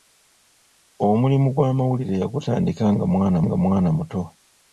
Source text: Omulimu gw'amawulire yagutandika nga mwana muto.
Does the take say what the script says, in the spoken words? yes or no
no